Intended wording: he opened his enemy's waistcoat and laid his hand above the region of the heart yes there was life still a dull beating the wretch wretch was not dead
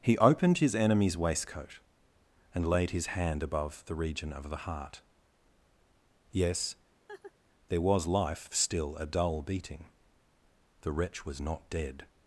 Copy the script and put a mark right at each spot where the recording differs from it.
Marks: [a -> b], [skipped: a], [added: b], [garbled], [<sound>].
he opened his enemy's waistcoat and laid his hand above the region of the heart yes [laugh] there was life still a dull beating the wretch [skipped: wretch] was not dead